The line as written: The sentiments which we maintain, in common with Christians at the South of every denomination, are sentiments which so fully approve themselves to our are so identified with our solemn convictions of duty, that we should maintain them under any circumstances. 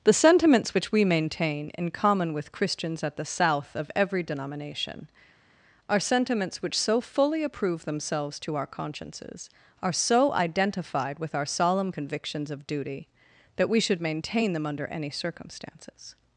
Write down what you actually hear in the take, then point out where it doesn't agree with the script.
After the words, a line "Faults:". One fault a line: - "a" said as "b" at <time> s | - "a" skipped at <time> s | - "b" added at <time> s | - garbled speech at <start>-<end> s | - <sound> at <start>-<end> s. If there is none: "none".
The sentiments which we maintain, in common with Christians at the South of every denomination, are sentiments which so fully approve themselves to our consciences, are so identified with our solemn convictions of duty, that we should maintain them under any circumstances.
Faults:
- "consciences" added at 8.7 s